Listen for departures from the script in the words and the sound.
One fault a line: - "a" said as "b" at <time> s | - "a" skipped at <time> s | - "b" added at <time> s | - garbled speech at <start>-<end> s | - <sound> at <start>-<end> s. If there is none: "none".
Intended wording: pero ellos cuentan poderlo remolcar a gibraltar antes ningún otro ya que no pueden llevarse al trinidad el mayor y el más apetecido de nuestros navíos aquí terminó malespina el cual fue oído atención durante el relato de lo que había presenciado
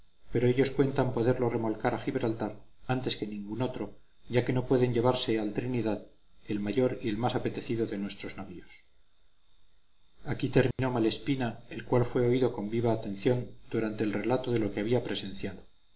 - "que" added at 3.2 s
- dropout at 10.7-10.8 s
- "con viva" added at 12.5 s